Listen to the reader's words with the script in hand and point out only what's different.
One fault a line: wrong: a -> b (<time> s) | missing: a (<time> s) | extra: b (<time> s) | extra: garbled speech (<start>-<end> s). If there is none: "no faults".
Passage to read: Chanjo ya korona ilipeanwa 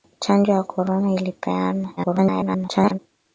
extra: garbled speech (2.0-3.0 s)